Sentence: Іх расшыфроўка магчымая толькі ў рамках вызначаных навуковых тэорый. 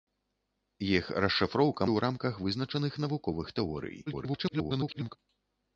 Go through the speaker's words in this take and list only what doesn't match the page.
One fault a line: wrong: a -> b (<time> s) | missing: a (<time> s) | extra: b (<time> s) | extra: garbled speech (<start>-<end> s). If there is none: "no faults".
missing: магчымая толькі (1.9 s)
extra: garbled speech (4.1-5.2 s)